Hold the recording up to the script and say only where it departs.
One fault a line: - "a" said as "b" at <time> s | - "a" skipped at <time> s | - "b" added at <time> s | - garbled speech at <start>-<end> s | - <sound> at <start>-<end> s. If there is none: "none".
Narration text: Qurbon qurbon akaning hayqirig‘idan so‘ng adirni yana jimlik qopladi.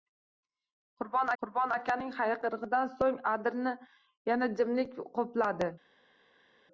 none